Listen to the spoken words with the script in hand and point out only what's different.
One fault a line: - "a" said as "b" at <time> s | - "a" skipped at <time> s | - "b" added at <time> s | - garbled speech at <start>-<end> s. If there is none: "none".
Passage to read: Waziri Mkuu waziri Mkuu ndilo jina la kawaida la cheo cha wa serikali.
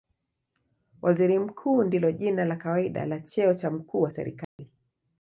- "waziri Mkuu" skipped at 1.8 s
- "mkuu" added at 3.7 s